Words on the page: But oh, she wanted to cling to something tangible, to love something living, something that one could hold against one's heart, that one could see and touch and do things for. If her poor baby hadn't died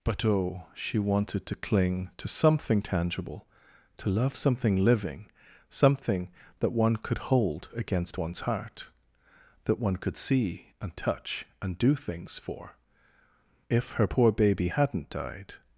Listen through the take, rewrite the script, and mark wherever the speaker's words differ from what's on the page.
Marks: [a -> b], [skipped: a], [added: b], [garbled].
But oh, she wanted to cling to something tangible, to love something living, something that one could hold against one's heart, that one could see and touch and do things for. If her poor baby hadn't died